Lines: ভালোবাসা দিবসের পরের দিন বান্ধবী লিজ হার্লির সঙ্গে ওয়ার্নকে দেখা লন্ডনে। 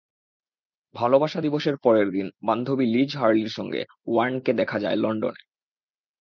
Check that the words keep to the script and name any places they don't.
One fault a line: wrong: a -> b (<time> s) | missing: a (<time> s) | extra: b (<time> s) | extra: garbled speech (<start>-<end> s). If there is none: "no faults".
extra: যায় (4.8 s)